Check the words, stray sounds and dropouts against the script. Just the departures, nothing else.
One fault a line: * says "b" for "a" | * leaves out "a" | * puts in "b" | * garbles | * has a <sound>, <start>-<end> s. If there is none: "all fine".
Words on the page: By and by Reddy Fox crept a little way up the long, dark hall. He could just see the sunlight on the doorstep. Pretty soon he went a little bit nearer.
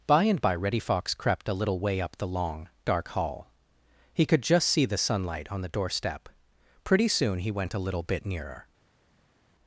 all fine